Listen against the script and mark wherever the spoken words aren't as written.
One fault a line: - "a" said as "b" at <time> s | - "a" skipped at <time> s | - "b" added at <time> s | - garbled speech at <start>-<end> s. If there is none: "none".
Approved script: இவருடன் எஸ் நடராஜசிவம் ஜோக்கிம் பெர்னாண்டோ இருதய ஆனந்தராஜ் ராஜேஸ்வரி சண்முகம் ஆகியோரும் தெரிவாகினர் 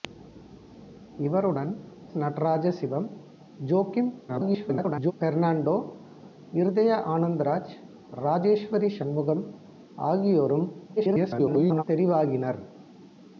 - "எஸ்" skipped at 1.7 s
- garbled speech at 4.3-5.1 s
- garbled speech at 11.0-11.8 s